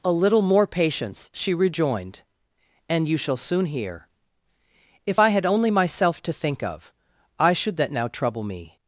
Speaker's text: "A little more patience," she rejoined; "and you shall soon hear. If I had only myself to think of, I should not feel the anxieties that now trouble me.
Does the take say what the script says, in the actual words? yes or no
no